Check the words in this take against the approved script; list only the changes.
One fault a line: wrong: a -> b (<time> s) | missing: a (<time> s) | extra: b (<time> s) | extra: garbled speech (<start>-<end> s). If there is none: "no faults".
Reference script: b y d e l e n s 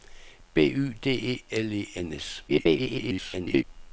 extra: garbled speech (2.5-3.6 s)